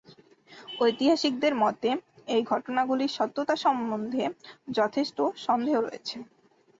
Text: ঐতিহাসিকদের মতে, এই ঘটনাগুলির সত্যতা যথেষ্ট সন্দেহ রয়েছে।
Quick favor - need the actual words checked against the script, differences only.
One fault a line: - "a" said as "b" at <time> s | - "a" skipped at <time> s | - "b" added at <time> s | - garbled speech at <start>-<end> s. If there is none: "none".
- "সম্বন্ধে" added at 3.6 s